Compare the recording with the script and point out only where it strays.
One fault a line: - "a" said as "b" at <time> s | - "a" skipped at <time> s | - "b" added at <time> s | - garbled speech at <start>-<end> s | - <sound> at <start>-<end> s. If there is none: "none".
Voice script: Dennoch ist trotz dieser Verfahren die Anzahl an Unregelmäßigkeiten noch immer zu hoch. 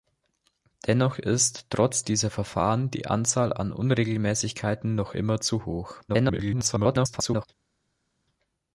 - garbled speech at 6.1-7.5 s